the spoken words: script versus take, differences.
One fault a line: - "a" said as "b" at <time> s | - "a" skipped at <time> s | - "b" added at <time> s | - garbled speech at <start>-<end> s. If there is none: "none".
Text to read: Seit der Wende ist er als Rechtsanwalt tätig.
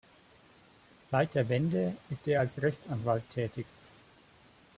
none